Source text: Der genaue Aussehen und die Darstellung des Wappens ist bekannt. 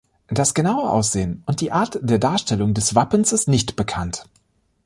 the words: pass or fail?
fail